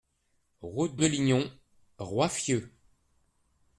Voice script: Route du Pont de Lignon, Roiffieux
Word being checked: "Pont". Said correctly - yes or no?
no